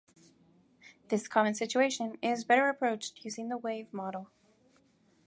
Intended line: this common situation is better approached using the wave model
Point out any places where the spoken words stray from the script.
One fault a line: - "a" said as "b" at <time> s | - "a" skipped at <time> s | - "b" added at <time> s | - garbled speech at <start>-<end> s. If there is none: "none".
none